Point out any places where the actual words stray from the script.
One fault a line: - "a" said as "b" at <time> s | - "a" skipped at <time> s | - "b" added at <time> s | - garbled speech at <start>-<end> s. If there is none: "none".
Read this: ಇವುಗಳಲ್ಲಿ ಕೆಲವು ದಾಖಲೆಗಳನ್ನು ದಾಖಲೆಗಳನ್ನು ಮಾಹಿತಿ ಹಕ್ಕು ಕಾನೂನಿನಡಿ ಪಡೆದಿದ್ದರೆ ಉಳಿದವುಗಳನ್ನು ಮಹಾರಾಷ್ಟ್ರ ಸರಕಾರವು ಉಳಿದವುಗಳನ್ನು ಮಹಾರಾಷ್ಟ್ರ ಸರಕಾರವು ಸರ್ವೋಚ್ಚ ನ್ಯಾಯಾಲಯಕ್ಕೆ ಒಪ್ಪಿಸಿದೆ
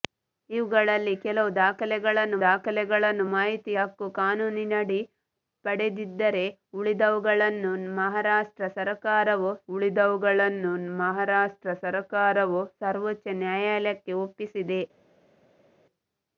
none